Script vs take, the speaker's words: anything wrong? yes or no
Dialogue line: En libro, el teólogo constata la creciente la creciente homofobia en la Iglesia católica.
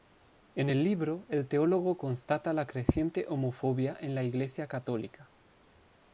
yes